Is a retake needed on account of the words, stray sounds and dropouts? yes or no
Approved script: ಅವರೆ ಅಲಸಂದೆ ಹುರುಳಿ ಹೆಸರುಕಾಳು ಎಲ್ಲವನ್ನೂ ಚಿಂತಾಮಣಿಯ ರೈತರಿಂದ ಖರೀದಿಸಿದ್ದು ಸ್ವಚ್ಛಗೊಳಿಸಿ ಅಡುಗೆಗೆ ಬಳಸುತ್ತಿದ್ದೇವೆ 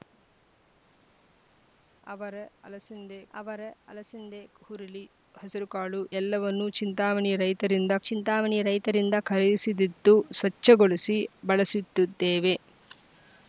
yes